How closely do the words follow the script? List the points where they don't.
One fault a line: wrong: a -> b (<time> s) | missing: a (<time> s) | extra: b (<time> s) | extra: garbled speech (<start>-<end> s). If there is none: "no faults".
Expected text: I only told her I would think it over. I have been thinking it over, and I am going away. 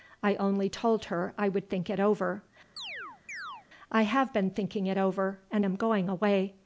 missing: I (5.7 s)